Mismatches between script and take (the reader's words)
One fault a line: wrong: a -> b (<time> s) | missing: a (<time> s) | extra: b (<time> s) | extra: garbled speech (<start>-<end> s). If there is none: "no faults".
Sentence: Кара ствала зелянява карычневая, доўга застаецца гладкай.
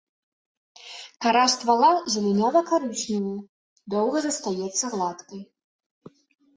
no faults